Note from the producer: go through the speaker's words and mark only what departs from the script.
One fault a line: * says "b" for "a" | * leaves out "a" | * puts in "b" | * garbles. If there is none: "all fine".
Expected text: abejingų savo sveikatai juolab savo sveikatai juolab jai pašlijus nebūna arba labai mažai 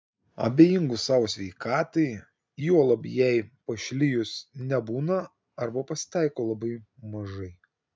* leaves out "savo sveikatai juolab"
* puts in "pasitaiko"